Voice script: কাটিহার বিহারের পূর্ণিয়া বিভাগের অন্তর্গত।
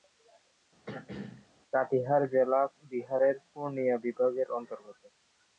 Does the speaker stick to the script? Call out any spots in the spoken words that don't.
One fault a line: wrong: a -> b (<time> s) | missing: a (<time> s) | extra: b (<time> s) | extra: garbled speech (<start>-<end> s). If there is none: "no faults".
extra: জেলা (2.3 s)